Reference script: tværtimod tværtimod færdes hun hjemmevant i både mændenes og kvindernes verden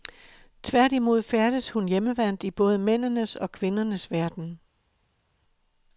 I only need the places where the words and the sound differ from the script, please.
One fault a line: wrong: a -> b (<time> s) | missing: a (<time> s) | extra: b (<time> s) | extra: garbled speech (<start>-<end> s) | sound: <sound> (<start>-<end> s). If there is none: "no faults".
missing: tværtimod (1.2 s)